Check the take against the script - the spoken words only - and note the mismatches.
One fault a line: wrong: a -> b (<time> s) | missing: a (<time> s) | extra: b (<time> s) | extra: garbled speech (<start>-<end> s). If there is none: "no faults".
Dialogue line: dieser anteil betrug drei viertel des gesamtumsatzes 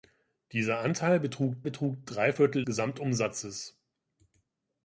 extra: betrug (1.6 s)
missing: des (2.6 s)